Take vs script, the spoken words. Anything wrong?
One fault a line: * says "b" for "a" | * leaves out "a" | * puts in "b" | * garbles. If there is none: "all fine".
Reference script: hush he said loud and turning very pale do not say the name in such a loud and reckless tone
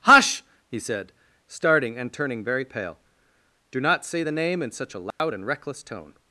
* says "starting" for "loud"